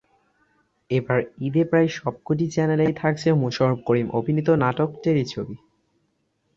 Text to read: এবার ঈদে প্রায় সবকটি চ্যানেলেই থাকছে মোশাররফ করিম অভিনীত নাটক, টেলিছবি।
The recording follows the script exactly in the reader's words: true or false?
true